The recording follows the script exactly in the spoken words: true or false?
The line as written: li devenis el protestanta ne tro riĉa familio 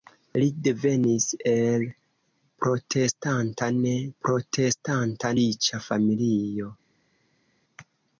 false